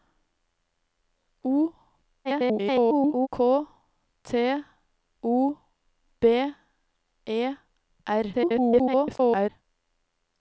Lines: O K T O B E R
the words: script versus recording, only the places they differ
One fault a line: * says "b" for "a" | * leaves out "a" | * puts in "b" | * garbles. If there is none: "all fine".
* garbles
* garbles